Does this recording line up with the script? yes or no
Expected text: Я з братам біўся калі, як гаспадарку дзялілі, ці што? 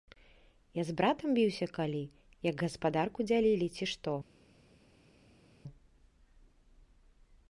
yes